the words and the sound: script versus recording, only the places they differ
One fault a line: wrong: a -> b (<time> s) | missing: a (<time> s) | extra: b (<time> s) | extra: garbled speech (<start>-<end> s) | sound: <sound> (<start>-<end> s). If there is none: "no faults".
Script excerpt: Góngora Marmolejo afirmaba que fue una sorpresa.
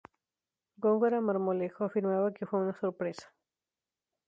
no faults